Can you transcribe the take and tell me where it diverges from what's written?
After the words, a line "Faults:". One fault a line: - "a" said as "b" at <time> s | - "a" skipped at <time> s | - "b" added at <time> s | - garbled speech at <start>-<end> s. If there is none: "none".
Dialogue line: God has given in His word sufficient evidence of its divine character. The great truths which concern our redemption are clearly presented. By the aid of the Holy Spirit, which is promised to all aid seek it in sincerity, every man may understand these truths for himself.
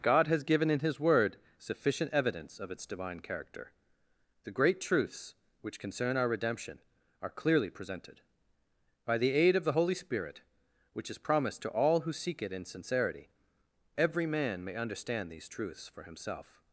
God has given in His word sufficient evidence of its divine character. The great truths which concern our redemption are clearly presented. By the aid of the Holy Spirit, which is promised to all who seek it in sincerity, every man may understand these truths for himself.
Faults:
- "aid" said as "who" at 12.0 s